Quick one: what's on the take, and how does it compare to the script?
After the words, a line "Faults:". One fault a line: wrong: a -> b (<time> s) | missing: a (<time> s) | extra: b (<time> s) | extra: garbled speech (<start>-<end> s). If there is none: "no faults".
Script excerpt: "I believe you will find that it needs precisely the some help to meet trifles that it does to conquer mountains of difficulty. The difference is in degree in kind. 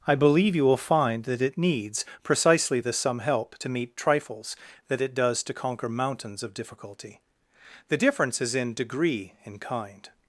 "I believe you will find that it needs precisely the some help to meet trifles that it does to conquer mountains of difficulty. The difference is in degree in kind.
Faults:
no faults